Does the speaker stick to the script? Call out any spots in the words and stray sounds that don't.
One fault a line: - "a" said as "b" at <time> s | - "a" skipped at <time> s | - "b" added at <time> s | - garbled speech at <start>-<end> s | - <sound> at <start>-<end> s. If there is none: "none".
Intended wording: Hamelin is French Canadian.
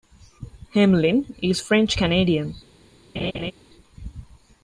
- laugh at 3.1-3.5 s